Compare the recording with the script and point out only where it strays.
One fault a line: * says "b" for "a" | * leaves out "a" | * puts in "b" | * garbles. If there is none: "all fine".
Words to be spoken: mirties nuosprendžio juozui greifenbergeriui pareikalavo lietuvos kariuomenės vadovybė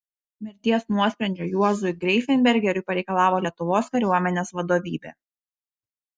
all fine